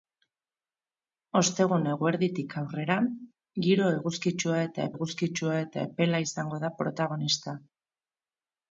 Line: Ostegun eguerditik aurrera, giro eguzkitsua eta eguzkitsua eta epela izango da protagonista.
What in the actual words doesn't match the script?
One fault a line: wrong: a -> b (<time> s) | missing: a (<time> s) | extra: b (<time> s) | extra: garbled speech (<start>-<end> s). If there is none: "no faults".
no faults